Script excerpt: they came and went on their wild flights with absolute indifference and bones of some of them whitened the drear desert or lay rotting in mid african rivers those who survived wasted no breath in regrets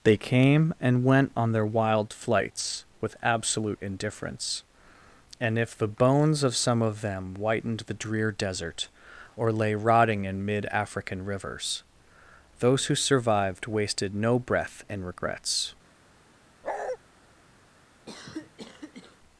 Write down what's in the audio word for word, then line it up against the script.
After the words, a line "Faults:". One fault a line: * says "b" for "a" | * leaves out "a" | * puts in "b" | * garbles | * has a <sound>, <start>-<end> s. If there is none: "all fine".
they came and went on their wild flights with absolute indifference and if the bones of some of them whitened the drear desert or lay rotting in mid african rivers those who survived wasted no breath in regrets
Faults:
* puts in "if the"
* has a bark, 16.6-17.0 s
* has a cough, 18.1-19.2 s